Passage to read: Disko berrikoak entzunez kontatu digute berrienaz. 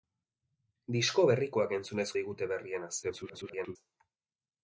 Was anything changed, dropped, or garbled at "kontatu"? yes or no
yes